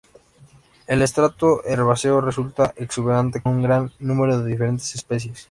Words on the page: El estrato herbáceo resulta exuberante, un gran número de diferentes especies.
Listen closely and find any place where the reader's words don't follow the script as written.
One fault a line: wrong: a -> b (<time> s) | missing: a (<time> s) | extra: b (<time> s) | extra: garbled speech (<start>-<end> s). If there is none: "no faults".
no faults